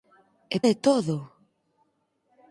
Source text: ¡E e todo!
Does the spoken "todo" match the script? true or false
true